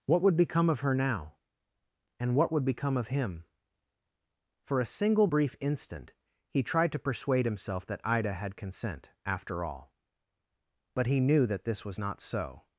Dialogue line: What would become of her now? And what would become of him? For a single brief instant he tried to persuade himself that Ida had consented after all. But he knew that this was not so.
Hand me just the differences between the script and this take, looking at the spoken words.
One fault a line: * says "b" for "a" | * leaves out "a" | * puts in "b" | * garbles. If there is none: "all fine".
* says "consent" for "consented"